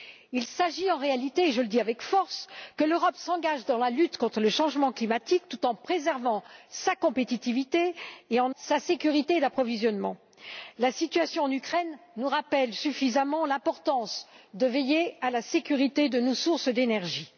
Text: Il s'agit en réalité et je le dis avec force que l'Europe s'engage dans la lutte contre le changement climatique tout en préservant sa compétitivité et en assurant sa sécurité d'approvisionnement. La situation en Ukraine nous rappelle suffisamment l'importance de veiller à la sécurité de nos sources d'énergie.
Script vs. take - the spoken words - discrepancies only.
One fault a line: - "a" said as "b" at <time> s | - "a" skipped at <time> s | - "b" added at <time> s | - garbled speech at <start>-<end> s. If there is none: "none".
- "assurant" skipped at 8.6 s